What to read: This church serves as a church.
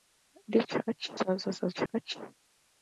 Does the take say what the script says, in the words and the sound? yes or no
no